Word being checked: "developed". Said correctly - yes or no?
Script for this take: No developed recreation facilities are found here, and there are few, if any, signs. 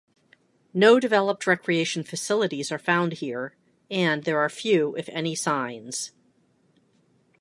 yes